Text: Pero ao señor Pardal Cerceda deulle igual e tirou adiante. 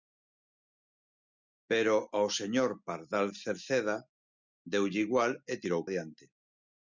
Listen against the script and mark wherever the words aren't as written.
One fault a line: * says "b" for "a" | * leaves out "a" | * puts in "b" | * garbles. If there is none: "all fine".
all fine